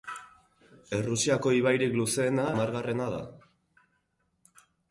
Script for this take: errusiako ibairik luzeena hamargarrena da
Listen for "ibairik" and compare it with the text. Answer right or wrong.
right